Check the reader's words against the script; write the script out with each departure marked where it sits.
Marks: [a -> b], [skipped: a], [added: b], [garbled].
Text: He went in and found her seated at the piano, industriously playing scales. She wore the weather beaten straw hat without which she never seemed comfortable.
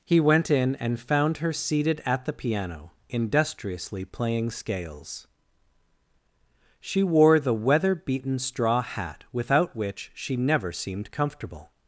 He went in and found her seated at the piano, industriously playing scales. She wore the weather beaten straw hat without which she never seemed comfortable.